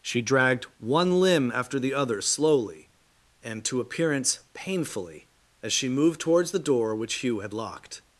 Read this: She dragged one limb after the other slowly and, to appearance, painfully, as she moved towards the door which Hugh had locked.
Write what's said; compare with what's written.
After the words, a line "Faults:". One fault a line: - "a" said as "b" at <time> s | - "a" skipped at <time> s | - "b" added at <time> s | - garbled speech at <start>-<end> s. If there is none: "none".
She dragged one limb after the other slowly and, to appearance, painfully, as she moved towards the door which Hugh had locked.
Faults:
none